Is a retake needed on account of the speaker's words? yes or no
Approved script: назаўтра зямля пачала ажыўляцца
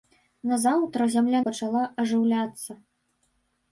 no